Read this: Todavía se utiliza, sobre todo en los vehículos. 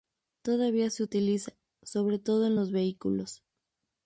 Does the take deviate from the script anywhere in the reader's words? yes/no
no